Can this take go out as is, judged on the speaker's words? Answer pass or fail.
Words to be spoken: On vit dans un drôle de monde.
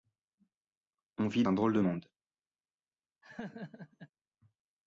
fail